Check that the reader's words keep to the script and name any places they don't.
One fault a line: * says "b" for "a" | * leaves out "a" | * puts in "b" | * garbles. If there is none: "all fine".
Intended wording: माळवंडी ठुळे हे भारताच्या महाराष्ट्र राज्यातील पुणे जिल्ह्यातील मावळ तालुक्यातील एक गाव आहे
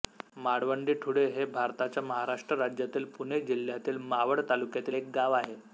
all fine